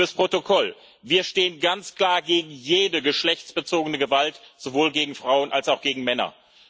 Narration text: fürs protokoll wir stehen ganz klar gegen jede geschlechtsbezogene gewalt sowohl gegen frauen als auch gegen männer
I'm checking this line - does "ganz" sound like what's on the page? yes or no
yes